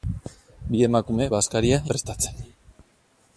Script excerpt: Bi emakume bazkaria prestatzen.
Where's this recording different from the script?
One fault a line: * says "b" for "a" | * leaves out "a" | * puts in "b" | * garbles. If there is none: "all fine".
all fine